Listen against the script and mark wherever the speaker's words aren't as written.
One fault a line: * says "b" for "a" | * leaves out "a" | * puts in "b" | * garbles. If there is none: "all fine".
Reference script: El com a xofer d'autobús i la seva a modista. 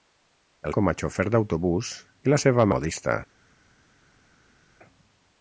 all fine